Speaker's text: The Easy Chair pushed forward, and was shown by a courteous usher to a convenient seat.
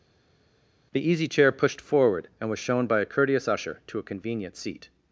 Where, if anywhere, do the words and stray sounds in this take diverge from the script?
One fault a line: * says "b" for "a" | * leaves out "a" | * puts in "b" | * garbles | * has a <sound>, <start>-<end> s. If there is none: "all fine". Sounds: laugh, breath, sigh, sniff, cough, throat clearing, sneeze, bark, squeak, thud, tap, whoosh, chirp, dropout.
all fine